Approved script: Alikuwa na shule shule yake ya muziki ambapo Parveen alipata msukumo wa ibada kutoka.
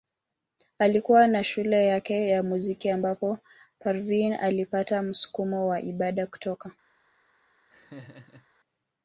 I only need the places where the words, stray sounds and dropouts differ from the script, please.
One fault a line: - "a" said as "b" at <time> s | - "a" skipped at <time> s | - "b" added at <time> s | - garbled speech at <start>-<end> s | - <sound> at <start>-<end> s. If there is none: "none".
- "shule" skipped at 1.9 s
- laugh at 7.7-8.5 s